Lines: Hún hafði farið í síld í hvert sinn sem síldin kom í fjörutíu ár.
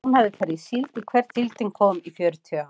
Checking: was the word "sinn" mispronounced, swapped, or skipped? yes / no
yes